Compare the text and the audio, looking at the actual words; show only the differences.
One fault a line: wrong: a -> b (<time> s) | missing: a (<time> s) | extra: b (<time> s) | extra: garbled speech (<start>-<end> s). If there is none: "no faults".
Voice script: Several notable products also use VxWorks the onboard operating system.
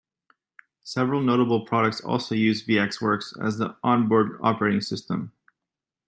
extra: as (3.5 s)